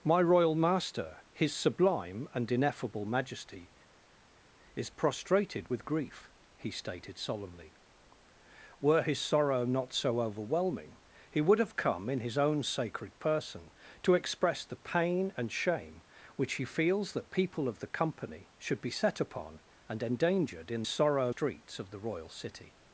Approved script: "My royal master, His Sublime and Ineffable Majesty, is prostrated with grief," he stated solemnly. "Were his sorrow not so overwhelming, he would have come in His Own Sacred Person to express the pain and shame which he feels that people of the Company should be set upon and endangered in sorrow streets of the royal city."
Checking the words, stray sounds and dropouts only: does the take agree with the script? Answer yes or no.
yes